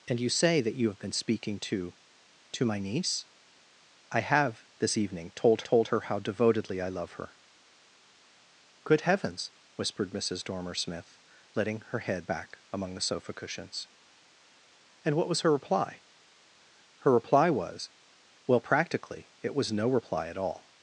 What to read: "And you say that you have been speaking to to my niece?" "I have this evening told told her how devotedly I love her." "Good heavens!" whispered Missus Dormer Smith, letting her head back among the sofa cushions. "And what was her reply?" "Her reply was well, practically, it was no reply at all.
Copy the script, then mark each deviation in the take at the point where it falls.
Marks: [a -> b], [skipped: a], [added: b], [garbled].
"And you say that you have been speaking to to my niece?" "I have this evening told told her how devotedly I love her." "Good heavens!" whispered Missus Dormer Smith, letting her head back among the sofa cushions. "And what was her reply?" "Her reply was well, practically, it was no reply at all.